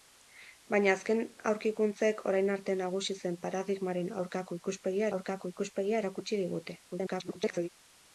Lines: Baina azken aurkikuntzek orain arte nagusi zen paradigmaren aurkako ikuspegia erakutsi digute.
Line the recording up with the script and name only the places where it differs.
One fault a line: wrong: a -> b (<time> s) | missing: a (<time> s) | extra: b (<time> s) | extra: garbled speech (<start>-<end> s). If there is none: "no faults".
extra: aurkako ikuspegia (5.2 s)
extra: garbled speech (6.9-7.7 s)